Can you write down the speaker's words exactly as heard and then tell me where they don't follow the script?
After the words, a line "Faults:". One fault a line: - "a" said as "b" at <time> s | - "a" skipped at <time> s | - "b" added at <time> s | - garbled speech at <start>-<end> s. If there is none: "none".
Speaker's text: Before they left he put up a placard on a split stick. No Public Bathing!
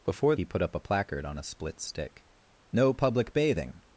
Before he put up a placard on a split stick. No Public Bathing!
Faults:
- "they left" skipped at 0.3 s